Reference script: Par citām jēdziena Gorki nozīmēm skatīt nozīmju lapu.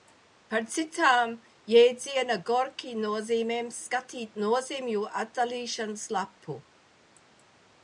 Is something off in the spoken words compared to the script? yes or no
yes